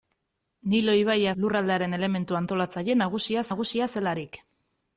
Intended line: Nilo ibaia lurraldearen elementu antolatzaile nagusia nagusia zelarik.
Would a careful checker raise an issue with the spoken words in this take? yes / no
no